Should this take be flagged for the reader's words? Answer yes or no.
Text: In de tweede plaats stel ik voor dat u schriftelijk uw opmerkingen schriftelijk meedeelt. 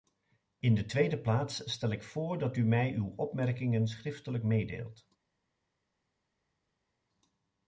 yes